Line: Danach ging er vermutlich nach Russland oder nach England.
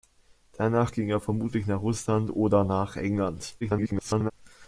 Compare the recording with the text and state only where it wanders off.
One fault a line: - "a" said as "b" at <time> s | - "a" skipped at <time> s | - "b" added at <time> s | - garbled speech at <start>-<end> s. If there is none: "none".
- garbled speech at 3.6-4.3 s